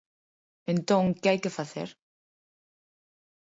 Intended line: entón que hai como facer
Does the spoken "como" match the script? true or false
false